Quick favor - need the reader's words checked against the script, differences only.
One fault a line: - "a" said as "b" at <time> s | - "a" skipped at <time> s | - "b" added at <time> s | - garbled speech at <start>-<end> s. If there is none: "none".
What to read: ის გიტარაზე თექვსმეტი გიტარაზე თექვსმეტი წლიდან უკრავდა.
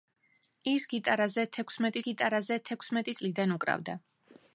none